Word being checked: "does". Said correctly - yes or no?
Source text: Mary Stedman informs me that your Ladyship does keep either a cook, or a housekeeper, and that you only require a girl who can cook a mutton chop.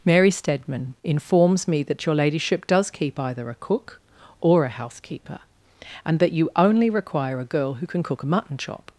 yes